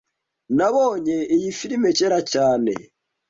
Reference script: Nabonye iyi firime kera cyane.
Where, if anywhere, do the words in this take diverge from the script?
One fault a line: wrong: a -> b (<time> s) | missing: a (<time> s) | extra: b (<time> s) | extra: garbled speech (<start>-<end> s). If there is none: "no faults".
no faults